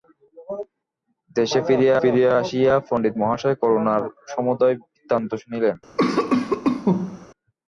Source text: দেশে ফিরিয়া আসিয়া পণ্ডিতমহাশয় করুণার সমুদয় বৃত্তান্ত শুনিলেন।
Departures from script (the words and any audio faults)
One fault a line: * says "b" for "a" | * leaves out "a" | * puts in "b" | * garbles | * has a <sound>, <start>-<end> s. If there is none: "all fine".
* puts in "ফিরিয়া"
* has a cough, 6.0-7.3 s